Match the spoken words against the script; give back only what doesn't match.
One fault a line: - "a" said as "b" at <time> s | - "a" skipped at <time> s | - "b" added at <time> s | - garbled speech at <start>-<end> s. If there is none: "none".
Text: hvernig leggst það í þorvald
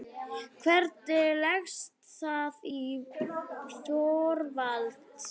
none